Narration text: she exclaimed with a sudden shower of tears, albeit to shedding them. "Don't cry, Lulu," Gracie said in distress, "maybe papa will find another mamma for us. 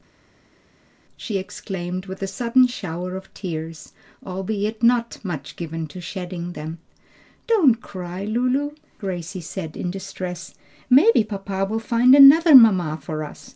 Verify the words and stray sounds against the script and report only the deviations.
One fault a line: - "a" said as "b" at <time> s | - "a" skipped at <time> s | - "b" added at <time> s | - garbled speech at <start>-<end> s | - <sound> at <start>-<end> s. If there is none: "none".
- "not much given" added at 4.8 s